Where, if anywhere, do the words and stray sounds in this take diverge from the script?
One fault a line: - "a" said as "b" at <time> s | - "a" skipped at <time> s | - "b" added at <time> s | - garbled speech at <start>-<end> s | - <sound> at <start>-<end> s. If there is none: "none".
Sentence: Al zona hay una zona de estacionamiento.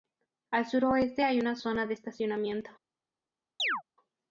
- "zona" said as "suroeste" at 0.7 s
- chirp at 3.6-3.8 s